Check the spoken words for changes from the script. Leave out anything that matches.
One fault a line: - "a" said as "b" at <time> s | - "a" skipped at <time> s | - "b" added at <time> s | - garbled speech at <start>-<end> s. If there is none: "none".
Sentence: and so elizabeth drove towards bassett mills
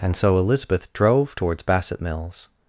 none